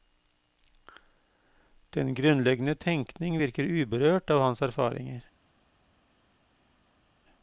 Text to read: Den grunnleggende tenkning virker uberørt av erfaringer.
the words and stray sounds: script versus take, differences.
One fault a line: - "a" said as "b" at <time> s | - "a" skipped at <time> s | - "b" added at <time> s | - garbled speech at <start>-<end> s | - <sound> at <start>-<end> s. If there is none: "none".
- "hans" added at 4.4 s